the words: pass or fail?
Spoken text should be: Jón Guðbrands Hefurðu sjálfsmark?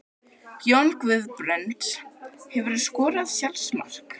fail